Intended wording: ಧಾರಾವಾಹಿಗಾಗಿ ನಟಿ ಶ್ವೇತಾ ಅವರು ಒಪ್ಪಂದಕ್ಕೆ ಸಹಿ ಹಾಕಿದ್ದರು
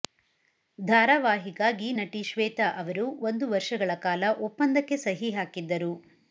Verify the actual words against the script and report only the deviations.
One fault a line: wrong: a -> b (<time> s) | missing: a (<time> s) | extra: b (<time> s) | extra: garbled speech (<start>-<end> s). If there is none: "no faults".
extra: ಒಂದು ವರ್ಷಗಳ ಕಾಲ (3.3 s)